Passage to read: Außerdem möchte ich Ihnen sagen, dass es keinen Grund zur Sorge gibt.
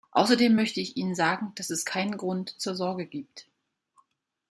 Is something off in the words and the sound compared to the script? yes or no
no